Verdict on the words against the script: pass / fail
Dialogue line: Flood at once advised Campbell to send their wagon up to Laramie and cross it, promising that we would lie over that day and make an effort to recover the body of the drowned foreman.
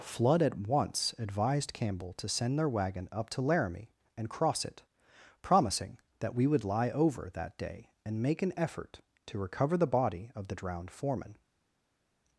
pass